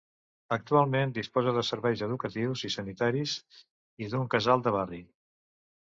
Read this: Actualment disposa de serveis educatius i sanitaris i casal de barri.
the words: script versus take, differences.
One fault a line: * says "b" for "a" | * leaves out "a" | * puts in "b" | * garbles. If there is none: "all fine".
* puts in "d'un"